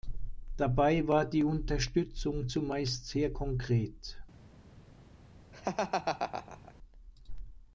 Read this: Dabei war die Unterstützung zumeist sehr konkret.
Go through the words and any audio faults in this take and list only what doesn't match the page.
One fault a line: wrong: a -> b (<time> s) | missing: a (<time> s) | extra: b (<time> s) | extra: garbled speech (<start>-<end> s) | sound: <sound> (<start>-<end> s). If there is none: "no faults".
sound: laugh (5.5-6.7 s)